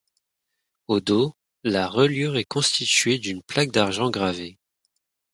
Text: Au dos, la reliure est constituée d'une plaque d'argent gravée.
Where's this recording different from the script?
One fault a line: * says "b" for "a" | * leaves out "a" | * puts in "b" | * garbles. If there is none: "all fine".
all fine